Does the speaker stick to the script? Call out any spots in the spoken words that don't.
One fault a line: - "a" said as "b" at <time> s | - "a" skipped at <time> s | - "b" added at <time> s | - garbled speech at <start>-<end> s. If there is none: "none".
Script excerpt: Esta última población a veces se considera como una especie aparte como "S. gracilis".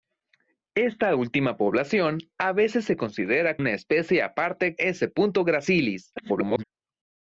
- "como" skipped at 3.6 s
- "como" skipped at 4.7 s
- garbled speech at 6.2-6.6 s